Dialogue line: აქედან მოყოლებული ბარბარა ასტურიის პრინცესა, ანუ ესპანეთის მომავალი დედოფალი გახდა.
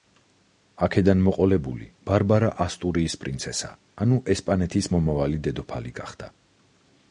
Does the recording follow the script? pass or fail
pass